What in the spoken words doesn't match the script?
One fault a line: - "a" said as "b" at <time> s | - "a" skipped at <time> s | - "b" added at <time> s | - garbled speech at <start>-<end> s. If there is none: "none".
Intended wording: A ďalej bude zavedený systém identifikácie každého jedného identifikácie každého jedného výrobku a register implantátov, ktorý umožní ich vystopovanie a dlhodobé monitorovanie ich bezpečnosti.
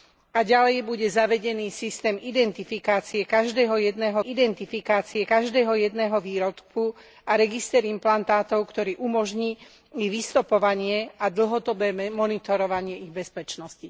none